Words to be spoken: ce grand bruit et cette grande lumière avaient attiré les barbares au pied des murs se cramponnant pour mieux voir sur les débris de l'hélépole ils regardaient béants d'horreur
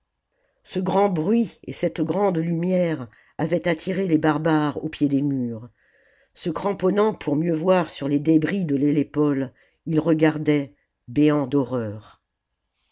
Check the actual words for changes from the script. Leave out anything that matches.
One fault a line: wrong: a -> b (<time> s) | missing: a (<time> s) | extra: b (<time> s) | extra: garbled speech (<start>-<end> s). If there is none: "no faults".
no faults